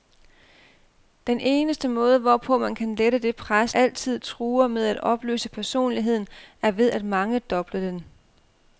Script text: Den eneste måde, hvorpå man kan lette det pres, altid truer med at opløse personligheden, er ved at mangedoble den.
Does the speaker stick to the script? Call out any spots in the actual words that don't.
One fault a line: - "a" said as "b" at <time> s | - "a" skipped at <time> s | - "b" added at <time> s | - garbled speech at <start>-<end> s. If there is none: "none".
none